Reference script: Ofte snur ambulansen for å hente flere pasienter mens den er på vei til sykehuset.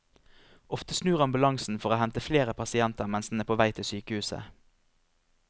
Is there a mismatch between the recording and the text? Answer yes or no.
no